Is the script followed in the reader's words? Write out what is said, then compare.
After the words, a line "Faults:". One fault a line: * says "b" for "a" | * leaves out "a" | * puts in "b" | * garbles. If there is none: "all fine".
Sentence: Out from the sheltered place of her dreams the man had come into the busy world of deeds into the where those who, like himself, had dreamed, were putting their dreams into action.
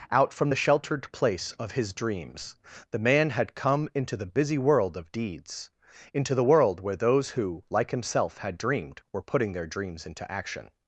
Out from the sheltered place of his dreams the man had come into the busy world of deeds into the world where those who, like himself, had dreamed, were putting their dreams into action.
Faults:
* says "his" for "her"
* puts in "world"